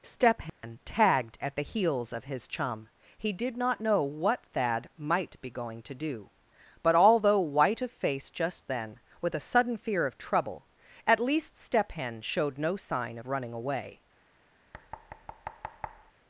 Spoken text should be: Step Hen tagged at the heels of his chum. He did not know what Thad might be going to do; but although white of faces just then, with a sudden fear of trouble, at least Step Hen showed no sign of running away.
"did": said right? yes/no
yes